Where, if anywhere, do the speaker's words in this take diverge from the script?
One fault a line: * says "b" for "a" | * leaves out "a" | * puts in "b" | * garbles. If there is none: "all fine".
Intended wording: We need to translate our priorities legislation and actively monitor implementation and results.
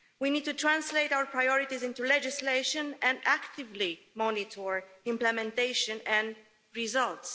* puts in "into"